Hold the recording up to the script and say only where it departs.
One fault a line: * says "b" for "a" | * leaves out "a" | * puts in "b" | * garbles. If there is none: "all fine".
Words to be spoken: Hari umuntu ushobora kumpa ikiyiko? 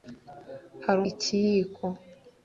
* leaves out "umuntu ushobora kumpa"